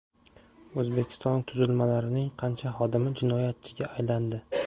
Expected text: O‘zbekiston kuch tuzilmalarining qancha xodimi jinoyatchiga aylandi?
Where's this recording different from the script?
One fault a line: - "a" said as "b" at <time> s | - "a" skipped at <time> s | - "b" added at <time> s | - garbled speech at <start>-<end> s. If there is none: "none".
- "kuch" skipped at 1.4 s